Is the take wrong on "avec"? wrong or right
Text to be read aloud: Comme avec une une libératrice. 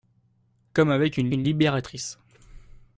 right